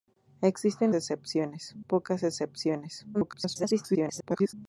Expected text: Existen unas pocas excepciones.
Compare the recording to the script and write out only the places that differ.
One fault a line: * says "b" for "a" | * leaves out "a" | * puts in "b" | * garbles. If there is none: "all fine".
* says "excepciones" for "unas"
* garbles